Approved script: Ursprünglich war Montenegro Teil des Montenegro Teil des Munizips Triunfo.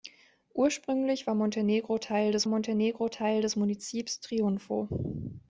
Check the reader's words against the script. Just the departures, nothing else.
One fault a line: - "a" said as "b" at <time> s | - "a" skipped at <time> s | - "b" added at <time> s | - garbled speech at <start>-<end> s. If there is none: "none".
none